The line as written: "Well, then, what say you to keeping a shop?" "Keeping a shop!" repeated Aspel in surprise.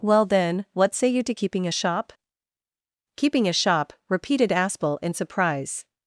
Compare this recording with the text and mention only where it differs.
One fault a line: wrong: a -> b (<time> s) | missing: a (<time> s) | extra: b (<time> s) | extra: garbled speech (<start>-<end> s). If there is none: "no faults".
no faults